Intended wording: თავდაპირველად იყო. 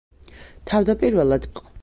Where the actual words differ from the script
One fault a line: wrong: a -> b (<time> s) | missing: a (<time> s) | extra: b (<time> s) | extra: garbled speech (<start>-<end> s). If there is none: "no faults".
no faults